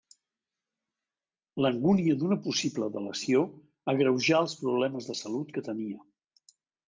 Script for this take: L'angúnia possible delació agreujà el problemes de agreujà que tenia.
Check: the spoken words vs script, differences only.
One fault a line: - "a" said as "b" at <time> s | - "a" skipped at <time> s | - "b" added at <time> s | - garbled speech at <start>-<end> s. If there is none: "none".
- "d'una" added at 2.2 s
- "el" said as "els" at 4.5 s
- "agreujà" said as "salut" at 5.2 s